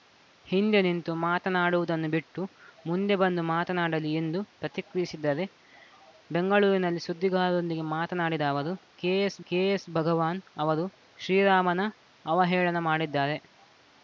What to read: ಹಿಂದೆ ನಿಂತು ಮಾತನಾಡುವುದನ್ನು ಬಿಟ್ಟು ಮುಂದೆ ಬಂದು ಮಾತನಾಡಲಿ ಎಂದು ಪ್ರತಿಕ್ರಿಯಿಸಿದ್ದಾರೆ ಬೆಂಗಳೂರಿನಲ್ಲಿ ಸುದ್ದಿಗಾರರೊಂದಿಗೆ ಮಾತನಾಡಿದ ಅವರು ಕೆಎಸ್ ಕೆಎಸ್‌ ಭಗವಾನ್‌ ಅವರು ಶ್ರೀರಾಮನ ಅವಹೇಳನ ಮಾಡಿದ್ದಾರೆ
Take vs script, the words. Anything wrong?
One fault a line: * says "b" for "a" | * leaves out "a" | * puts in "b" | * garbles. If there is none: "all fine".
all fine